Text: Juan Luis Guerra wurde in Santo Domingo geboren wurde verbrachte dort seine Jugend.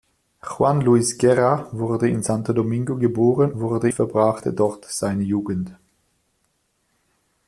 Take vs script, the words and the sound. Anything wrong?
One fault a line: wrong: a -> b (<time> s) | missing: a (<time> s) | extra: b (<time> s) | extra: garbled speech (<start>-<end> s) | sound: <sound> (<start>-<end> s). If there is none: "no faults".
no faults